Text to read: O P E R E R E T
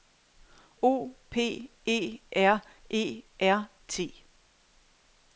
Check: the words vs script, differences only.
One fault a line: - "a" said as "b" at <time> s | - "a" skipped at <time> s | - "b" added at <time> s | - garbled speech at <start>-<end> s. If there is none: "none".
- "E" skipped at 3.7 s